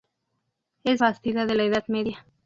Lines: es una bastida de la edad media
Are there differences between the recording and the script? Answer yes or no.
yes